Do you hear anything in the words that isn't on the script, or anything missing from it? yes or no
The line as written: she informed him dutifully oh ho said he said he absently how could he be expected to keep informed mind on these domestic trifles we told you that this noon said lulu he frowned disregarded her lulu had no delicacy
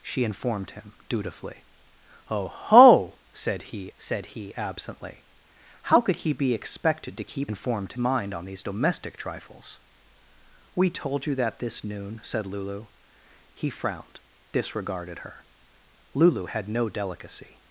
no